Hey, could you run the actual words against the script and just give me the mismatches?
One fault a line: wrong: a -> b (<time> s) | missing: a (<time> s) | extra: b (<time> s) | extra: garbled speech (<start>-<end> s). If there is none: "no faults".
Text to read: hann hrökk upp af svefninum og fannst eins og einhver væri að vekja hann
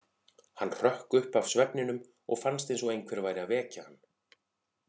no faults